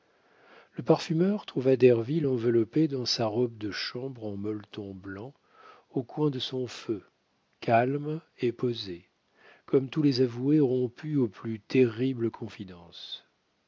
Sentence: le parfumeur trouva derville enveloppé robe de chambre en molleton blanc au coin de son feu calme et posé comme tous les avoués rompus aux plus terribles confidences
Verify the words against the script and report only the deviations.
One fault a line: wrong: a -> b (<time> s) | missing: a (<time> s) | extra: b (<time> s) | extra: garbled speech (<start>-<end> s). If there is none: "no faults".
extra: dans sa (2.9 s)